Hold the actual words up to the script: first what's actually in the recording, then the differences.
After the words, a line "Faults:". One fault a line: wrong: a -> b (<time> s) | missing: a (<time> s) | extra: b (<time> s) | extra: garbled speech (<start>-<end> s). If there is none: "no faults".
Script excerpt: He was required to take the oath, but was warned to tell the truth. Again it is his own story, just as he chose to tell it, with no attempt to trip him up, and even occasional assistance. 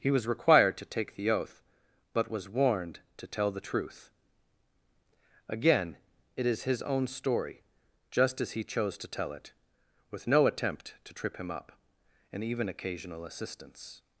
He was required to take the oath, but was warned to tell the truth. Again it is his own story, just as he chose to tell it, with no attempt to trip him up, and even occasional assistance.
Faults:
no faults